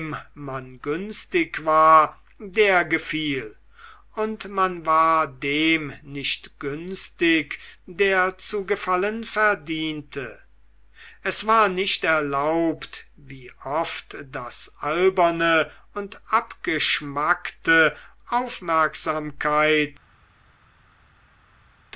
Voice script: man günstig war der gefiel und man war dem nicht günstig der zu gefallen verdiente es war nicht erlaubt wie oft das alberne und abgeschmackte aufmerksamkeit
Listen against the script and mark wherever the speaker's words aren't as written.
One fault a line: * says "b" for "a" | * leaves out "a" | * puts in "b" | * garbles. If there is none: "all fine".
all fine